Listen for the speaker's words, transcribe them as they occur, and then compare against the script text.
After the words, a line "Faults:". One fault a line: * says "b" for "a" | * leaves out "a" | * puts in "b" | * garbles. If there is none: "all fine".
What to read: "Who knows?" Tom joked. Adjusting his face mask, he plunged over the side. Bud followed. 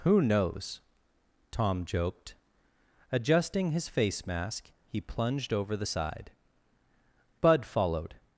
"Who knows?" Tom joked. Adjusting his face mask, he plunged over the side. Bud followed.
Faults:
all fine